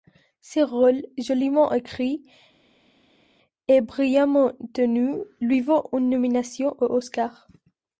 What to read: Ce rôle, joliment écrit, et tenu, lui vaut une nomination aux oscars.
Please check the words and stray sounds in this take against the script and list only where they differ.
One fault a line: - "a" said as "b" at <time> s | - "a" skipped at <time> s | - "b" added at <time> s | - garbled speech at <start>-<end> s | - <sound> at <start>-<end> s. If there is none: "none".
- "brillamment" added at 3.8 s